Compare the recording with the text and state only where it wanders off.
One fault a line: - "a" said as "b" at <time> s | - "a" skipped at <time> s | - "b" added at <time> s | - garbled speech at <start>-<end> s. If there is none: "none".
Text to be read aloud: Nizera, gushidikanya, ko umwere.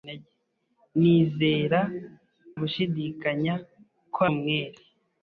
none